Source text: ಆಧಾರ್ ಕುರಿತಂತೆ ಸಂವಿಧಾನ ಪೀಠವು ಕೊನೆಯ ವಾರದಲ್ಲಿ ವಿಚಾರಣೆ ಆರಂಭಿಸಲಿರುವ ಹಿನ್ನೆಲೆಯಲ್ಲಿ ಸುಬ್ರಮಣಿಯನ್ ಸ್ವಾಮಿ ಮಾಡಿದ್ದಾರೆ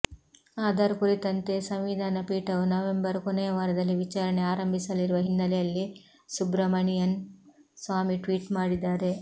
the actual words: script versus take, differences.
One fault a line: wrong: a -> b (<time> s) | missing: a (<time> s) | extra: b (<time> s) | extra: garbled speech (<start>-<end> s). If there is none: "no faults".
extra: ನವೆಂಬರ್ (2.7 s)
extra: ಟ್ವೀಟ್ (8.2 s)